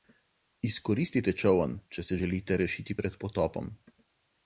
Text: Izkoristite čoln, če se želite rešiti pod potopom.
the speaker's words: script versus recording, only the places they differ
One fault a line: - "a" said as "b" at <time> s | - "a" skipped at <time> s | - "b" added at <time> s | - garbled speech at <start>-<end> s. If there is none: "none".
- "pod" said as "pred" at 3.0 s